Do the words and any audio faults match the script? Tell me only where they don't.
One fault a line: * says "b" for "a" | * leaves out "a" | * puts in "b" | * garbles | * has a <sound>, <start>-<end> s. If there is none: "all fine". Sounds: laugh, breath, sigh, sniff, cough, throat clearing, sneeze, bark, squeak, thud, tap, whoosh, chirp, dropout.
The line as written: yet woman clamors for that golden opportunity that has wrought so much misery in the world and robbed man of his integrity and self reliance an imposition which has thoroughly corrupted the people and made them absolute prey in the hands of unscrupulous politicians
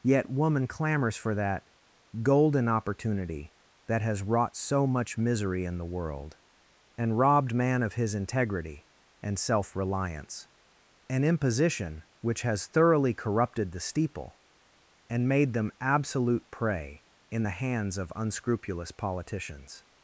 * says "steeple" for "people"